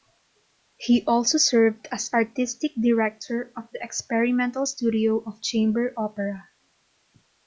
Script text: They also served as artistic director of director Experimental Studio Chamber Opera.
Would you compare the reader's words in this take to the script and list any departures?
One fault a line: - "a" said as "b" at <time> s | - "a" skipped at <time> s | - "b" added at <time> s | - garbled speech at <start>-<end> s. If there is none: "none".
- "They" said as "He" at 0.8 s
- "director" said as "the" at 3.7 s
- "of" added at 5.3 s